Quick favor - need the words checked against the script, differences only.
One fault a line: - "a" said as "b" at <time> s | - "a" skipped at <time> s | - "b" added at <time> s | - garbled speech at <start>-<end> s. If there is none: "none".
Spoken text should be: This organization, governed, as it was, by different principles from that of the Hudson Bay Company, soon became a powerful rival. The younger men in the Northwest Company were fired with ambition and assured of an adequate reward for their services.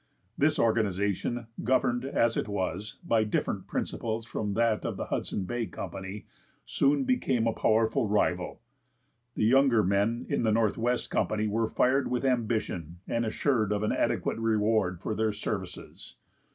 none